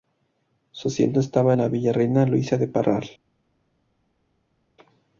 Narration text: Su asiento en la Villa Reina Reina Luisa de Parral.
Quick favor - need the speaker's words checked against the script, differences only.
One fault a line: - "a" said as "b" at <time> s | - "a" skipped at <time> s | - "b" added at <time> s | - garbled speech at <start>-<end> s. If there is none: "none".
- "estaba" added at 1.2 s
- "Reina" skipped at 2.3 s